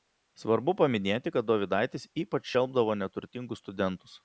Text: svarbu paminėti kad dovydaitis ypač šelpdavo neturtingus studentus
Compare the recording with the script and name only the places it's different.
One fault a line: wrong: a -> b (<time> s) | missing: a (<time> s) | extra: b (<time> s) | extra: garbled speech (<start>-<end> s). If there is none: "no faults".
no faults